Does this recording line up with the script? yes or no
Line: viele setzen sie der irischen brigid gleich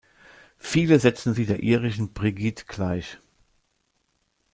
yes